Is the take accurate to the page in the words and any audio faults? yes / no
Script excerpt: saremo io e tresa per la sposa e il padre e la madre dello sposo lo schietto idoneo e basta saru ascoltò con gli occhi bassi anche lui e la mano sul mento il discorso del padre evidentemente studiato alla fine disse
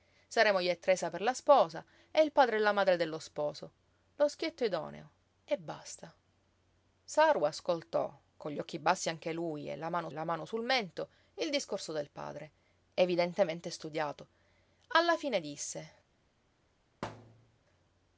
no